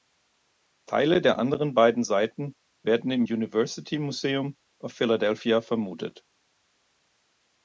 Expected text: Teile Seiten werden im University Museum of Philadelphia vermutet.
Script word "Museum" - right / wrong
right